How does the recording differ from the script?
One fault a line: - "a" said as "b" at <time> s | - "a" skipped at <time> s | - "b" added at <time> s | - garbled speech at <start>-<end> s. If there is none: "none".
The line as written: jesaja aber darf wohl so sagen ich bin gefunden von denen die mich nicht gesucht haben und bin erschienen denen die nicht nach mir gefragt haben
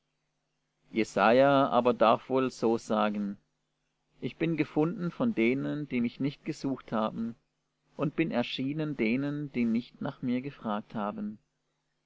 none